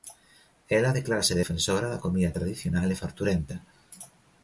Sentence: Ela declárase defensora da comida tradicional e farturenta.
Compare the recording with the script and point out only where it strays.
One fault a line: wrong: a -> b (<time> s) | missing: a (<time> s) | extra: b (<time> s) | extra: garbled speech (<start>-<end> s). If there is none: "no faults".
no faults